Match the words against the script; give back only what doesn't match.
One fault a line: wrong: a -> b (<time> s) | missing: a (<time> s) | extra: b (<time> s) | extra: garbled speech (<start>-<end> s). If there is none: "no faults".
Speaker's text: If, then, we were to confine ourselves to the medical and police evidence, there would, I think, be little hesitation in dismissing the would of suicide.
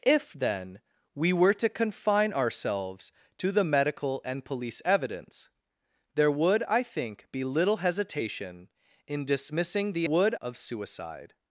no faults